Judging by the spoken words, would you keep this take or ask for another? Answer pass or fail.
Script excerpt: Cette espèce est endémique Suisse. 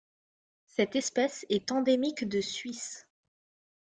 fail